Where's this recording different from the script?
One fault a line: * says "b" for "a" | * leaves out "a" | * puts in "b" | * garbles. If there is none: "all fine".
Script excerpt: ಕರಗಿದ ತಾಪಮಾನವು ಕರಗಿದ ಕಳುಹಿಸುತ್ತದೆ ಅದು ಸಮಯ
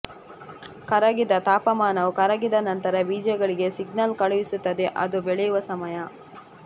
* puts in "ನಂತರ ಬೀಜಗಳಿಗೆ ಸಿಗ್ನಲ್"
* puts in "ಬೆಳೆಯುವ"